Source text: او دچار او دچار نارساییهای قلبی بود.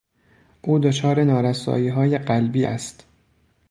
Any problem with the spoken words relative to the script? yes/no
yes